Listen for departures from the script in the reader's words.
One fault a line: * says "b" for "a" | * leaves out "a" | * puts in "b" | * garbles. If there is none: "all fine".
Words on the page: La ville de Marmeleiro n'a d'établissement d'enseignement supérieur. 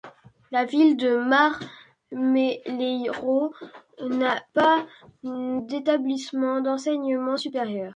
* puts in "pas"